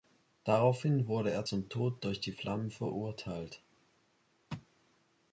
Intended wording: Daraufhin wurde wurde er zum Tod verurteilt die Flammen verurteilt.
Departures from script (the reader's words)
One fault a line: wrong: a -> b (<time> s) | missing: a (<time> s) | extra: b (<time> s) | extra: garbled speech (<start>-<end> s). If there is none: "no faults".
missing: wurde (1.3 s)
wrong: verurteilt -> durch (2.0 s)